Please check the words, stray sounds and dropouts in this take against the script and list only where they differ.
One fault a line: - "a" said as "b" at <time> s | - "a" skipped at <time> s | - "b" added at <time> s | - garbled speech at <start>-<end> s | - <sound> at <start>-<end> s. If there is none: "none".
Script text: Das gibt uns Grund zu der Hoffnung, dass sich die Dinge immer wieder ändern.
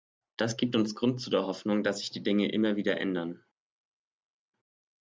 none